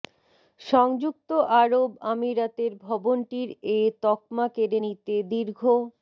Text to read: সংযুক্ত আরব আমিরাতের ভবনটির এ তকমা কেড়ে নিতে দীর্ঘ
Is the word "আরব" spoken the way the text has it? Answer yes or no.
yes